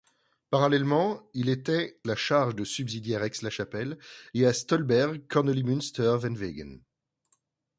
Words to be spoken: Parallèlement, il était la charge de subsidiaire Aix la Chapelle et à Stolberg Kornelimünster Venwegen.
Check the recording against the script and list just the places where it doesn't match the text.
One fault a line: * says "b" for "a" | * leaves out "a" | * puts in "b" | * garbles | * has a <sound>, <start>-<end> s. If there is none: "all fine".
all fine